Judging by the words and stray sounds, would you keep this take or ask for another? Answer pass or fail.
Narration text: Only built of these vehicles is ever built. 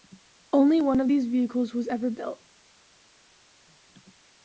fail